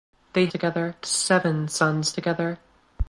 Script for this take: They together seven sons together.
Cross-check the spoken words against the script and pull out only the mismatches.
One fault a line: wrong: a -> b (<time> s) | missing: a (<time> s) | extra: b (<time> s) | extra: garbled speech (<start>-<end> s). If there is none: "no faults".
no faults